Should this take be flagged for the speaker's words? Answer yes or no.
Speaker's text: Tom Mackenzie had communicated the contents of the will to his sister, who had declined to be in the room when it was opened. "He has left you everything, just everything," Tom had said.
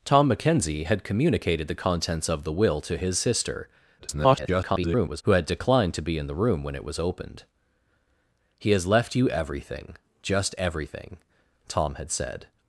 yes